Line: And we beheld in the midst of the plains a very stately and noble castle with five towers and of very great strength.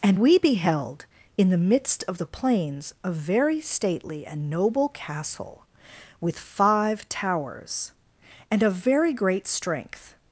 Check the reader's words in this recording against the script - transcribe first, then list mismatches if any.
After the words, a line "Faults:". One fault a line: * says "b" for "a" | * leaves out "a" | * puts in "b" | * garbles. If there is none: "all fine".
And we beheld in the midst of the plains a very stately and noble castle with five towers and of very great strength.
Faults:
all fine